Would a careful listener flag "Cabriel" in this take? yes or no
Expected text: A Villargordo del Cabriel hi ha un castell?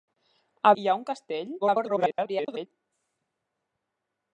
yes